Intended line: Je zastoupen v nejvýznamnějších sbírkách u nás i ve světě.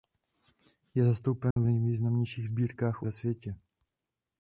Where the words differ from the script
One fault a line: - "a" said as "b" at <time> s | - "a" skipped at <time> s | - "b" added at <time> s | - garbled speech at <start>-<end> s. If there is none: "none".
- "nás i" skipped at 3.1 s